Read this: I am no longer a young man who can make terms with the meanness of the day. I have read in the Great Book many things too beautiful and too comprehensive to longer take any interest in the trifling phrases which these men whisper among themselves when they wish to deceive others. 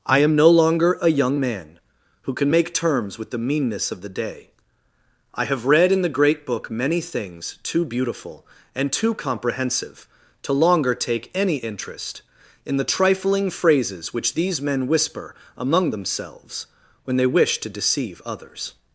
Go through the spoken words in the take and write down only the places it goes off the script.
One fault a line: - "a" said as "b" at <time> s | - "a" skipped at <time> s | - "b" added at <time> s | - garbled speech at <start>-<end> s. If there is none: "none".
none